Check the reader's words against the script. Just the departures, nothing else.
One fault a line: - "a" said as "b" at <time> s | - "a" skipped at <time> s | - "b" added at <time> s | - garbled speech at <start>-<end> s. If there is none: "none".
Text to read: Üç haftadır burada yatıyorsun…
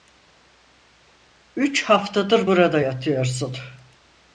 none